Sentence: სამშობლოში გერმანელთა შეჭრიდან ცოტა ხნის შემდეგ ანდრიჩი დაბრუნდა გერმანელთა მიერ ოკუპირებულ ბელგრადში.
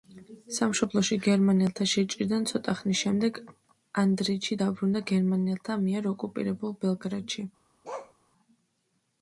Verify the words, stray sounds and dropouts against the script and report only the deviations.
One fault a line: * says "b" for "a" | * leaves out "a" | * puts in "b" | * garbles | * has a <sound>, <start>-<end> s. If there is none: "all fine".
* has a bark, 7.8-8.1 s